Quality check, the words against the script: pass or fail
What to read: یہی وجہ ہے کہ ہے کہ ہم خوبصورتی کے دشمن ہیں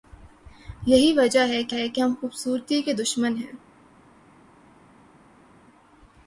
pass